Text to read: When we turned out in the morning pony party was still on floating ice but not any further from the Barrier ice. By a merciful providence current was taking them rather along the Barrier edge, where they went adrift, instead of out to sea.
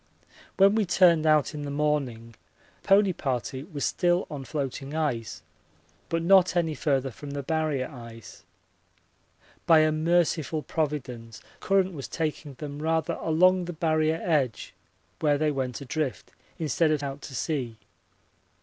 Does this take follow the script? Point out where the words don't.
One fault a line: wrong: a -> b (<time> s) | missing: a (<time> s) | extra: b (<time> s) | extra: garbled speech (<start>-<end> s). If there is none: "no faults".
no faults